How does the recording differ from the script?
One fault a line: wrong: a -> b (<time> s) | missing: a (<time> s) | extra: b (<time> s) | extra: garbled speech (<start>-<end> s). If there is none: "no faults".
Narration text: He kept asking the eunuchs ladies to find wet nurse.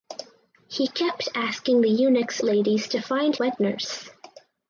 no faults